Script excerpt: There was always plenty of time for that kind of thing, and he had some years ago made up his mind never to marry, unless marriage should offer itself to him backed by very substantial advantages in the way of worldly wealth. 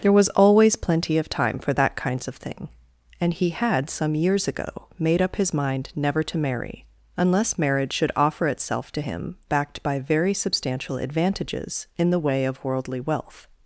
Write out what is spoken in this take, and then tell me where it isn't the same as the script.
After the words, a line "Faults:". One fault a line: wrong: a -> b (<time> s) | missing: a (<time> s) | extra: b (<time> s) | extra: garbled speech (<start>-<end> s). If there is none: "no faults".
There was always plenty of time for that kinds of thing, and he had some years ago made up his mind never to marry, unless marriage should offer itself to him backed by very substantial advantages in the way of worldly wealth.
Faults:
wrong: kind -> kinds (1.9 s)